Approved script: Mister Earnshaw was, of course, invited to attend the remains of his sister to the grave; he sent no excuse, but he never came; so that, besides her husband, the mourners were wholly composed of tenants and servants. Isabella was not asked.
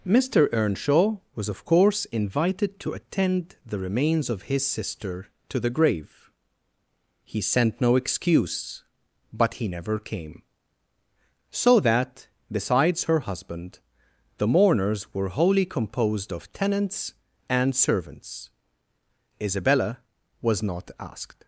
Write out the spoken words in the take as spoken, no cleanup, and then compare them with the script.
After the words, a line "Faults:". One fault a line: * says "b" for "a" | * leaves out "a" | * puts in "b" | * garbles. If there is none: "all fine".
Mister Earnshaw was, of course, invited to attend the remains of his sister to the grave; he sent no excuse, but he never came; so that, besides her husband, the mourners were wholly composed of tenants and servants. Isabella was not asked.
Faults:
all fine